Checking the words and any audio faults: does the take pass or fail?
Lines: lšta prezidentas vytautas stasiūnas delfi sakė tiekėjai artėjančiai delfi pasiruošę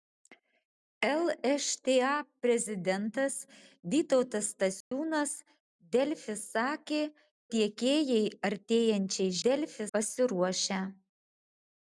fail